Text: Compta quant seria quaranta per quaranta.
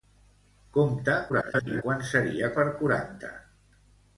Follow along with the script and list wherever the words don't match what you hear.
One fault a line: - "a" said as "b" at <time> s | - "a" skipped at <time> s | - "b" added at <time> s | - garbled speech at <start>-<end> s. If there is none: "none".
- garbled speech at 1.3-1.8 s
- "quaranta" skipped at 2.5 s